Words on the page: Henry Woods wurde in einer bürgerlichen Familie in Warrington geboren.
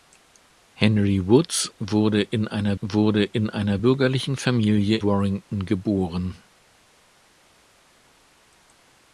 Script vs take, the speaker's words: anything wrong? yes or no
yes